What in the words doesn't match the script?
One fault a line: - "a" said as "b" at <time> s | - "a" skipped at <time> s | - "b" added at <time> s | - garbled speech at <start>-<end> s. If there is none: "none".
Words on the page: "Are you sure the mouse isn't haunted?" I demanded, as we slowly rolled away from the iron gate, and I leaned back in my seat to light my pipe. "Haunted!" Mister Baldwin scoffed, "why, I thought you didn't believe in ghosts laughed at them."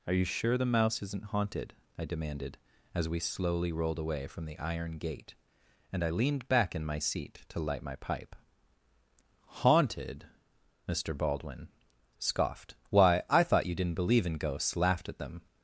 none